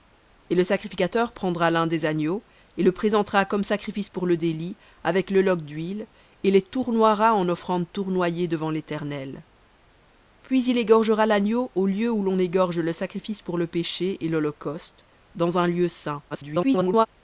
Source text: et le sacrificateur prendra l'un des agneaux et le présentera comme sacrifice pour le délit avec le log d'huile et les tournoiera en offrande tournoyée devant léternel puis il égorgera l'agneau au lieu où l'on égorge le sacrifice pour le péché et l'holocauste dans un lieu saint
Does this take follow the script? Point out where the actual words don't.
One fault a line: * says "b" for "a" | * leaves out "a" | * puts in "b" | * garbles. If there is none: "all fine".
* garbles